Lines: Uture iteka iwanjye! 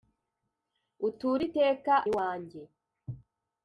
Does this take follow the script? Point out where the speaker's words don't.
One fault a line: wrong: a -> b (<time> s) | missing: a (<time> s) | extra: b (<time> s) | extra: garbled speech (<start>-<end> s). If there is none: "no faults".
no faults